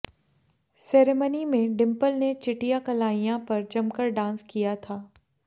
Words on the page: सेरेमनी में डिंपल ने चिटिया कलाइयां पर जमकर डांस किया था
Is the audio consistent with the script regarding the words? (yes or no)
yes